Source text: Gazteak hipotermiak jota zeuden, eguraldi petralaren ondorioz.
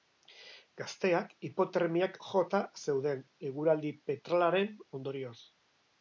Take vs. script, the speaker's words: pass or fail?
pass